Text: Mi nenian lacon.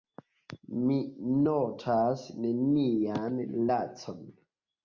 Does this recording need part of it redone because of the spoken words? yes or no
yes